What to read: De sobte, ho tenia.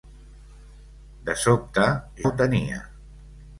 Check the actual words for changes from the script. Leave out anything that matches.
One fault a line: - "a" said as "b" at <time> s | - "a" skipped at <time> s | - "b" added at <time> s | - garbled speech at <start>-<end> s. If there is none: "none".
none